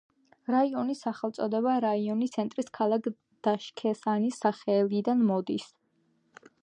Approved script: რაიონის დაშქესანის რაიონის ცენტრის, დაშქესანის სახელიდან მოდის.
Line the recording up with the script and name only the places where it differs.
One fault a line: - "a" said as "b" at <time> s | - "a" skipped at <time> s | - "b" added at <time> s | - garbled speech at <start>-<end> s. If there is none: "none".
- "დაშქესანის" said as "სახელწოდება" at 1.1 s
- "ქალაქ" added at 2.8 s